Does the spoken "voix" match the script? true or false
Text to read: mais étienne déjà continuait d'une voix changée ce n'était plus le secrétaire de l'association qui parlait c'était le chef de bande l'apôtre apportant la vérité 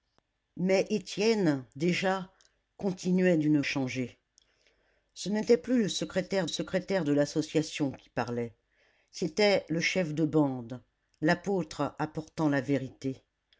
false